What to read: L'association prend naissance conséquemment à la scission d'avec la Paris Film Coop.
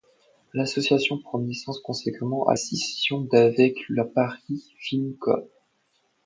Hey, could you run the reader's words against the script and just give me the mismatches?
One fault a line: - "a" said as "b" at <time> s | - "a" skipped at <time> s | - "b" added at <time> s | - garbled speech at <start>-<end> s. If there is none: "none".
- "la" skipped at 2.5 s